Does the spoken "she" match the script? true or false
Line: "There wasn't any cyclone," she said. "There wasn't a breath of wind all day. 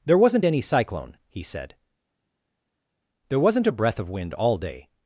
false